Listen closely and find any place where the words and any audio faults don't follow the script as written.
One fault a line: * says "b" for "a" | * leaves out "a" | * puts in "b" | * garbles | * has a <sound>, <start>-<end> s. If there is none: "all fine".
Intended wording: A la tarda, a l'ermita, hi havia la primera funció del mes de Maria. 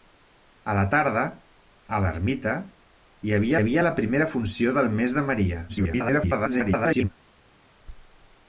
* puts in "havia"
* garbles